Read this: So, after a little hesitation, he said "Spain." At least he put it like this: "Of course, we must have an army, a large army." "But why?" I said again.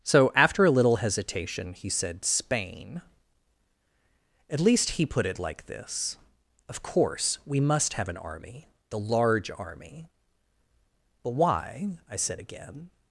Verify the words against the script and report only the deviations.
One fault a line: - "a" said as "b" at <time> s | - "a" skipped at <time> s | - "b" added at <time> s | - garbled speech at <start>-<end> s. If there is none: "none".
- "a" said as "the" at 8.9 s